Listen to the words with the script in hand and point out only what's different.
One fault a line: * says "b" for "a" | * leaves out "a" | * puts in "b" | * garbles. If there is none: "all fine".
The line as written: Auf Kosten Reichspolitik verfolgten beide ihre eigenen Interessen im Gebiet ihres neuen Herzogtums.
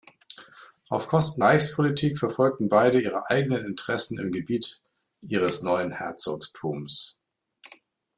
all fine